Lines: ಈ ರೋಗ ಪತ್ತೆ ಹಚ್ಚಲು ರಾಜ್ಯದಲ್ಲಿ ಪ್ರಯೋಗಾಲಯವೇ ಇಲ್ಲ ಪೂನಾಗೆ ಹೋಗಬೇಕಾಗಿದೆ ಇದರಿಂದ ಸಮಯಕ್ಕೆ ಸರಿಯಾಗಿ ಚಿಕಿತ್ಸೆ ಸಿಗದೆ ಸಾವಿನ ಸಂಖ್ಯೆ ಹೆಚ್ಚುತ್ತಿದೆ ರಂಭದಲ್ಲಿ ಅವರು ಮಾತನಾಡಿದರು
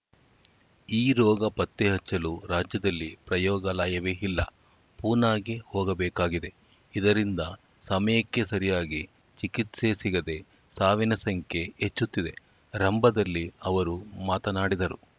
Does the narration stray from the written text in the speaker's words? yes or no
no